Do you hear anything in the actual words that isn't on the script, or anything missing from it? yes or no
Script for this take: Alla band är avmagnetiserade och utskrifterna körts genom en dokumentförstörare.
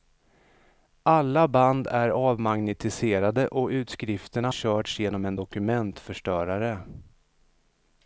no